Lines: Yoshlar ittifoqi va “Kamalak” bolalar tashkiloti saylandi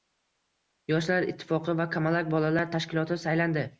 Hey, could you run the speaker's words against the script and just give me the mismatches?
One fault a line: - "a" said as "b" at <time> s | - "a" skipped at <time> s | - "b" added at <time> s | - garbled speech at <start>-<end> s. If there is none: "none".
none